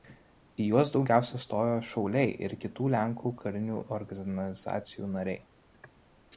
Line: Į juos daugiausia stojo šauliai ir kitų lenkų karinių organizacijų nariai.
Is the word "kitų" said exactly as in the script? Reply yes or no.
yes